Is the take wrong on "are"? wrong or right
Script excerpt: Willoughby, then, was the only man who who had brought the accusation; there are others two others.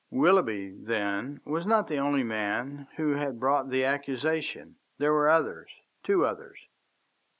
wrong